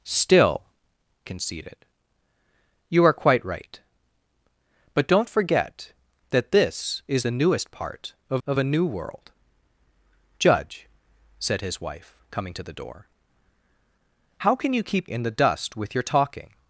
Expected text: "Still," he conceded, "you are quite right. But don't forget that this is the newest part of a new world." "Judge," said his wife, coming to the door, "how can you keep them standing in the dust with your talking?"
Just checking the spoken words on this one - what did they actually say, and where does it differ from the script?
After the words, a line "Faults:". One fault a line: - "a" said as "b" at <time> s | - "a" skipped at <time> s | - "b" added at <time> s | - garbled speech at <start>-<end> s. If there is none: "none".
"Still," conceded, "you are quite right. But don't forget that this is the newest part of of a new world." "Judge," said his wife, coming to the door, "how can you keep in the dust with your talking?"
Faults:
- "he" skipped at 0.6 s
- "of" added at 8.5 s
- "them standing" skipped at 15.1 s